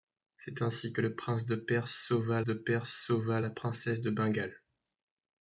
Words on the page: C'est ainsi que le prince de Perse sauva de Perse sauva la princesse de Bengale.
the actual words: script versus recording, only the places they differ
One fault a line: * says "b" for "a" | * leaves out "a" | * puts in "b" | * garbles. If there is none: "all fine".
all fine